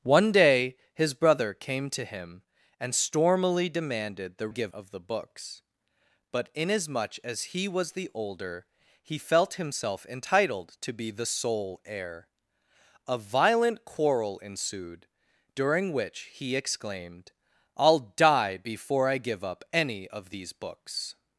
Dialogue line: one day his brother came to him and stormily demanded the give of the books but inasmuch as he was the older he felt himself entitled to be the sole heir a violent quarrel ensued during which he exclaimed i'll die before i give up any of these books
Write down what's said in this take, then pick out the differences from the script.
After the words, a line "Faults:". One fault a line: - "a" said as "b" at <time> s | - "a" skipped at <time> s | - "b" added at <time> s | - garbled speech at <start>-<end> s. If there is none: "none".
one day his brother came to him and stormily demanded the give of the books but inasmuch as he was the older he felt himself entitled to be the sole heir a violent quarrel ensued during which he exclaimed i'll die before i give up any of these books
Faults:
none